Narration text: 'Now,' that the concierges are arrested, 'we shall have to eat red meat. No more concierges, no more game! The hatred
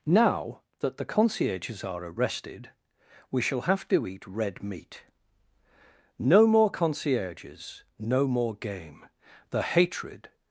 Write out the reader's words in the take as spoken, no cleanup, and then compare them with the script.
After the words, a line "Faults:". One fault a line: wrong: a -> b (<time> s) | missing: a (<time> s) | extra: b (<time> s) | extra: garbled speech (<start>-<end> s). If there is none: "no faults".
'Now,' that the concierges are arrested, 'we shall have to eat red meat. No more concierges, no more game! The hatred
Faults:
no faults